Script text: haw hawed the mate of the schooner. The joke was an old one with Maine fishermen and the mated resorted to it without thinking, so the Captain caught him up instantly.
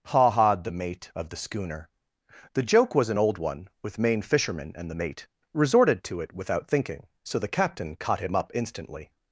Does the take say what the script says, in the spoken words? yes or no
no